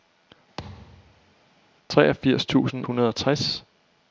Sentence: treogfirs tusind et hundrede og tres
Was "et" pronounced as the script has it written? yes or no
no